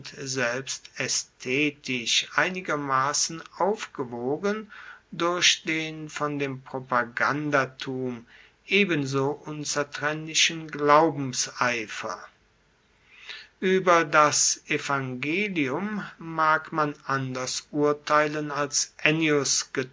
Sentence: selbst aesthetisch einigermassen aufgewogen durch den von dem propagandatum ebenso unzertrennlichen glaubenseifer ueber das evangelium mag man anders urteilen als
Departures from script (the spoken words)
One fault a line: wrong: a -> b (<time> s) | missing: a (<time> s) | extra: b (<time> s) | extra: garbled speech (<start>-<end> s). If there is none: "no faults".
no faults